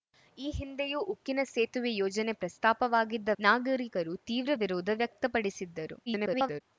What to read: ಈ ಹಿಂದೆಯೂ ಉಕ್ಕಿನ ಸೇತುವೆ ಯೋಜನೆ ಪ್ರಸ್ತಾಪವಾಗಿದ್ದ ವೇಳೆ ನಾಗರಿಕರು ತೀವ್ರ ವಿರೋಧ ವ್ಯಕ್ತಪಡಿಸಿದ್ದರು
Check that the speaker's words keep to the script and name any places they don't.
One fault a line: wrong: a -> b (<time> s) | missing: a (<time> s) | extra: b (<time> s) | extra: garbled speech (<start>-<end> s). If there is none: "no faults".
missing: ವೇಳೆ (3.3 s)
extra: garbled speech (6.1-6.6 s)